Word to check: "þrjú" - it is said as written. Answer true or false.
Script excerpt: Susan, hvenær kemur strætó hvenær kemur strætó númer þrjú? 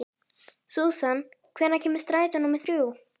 true